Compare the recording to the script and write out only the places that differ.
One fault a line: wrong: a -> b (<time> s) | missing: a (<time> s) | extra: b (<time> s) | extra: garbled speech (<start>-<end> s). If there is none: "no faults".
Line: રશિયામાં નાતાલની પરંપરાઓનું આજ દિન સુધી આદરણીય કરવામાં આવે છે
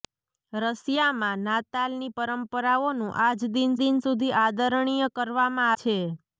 extra: દિન (3.8 s)
missing: આવે (5.7 s)